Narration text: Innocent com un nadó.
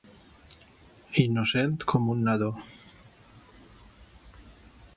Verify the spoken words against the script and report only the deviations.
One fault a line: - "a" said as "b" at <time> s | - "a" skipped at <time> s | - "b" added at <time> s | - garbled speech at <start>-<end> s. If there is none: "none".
none